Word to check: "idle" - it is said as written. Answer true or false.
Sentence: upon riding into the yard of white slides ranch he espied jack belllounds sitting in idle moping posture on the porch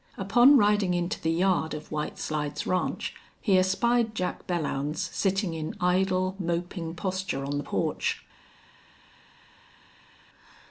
true